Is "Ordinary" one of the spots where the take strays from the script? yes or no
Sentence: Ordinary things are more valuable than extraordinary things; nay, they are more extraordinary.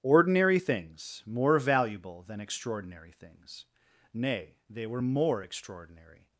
no